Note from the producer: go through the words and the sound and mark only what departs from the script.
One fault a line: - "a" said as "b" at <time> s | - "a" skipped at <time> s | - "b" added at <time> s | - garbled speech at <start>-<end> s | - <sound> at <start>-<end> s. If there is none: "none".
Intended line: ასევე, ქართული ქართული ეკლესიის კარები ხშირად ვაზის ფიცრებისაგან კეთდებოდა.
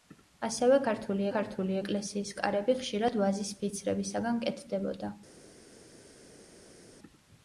none